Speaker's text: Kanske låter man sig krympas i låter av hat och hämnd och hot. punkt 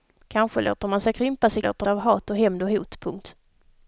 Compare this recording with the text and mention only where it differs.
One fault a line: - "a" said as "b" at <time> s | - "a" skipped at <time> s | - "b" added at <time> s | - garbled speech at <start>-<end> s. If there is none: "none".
none